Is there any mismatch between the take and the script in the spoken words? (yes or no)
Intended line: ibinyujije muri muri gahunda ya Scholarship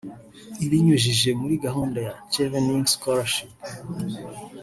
yes